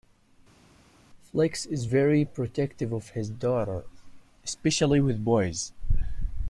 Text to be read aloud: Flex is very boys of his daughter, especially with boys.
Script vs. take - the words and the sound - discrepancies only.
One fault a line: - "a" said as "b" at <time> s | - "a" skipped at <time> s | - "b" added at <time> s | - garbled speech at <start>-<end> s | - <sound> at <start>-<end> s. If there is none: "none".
- "boys" said as "protective" at 2.2 s